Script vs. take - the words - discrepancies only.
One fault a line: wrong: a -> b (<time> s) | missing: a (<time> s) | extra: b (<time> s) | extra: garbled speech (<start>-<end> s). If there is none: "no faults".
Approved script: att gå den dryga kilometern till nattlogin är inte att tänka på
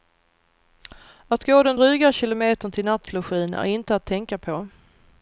no faults